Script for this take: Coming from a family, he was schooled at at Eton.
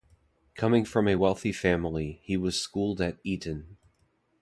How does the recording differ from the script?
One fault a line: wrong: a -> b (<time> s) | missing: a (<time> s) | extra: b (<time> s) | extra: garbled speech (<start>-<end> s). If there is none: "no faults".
extra: wealthy (1.1 s)
missing: at (3.2 s)